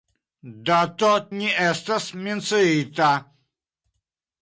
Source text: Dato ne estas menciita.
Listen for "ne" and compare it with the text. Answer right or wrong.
right